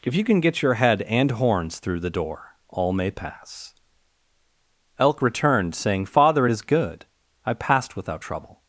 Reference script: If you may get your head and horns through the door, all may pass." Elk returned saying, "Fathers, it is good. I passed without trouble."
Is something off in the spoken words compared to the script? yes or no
yes